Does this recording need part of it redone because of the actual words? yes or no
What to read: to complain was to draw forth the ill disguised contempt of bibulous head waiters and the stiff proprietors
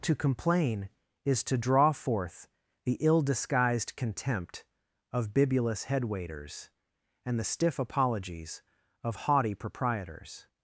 yes